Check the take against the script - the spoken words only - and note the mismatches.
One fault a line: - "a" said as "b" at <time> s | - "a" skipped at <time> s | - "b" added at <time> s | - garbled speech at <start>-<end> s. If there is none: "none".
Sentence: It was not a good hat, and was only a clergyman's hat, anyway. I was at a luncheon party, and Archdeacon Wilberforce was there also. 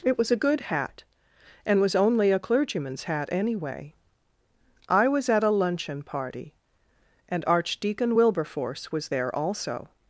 - "not" skipped at 0.3 s